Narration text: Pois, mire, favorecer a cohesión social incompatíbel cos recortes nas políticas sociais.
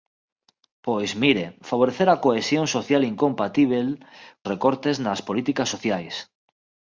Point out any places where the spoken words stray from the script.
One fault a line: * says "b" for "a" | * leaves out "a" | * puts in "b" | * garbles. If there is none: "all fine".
* leaves out "cos"